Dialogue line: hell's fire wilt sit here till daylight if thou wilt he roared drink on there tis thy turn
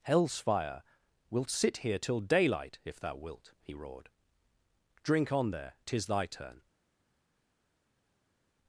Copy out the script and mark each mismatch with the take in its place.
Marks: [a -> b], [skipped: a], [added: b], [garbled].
hell's fire wilt sit here till daylight if thou wilt he roared drink on there tis thy turn